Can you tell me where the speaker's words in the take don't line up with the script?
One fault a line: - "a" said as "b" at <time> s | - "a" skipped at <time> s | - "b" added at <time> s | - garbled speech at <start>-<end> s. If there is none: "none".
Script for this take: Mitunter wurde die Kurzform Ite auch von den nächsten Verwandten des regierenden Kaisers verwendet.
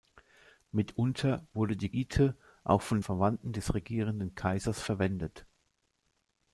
- "Kurzform" skipped at 1.9 s
- "den nächsten" skipped at 3.0 s